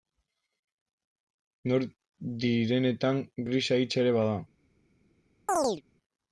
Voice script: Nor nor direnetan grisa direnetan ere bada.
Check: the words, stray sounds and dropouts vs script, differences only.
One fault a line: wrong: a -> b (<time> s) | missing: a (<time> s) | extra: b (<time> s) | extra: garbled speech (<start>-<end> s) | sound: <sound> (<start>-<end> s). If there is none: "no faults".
missing: nor (1.9 s)
wrong: direnetan -> hitsa (3.8 s)
sound: chirp (5.5-5.8 s)